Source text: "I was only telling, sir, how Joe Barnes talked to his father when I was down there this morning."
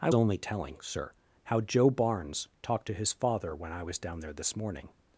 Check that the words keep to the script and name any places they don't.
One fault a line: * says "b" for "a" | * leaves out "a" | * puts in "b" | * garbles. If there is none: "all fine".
* leaves out "was"